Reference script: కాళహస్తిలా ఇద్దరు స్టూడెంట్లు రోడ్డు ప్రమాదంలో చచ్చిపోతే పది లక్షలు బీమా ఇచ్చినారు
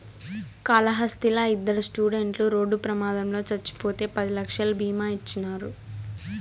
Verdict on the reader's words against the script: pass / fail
pass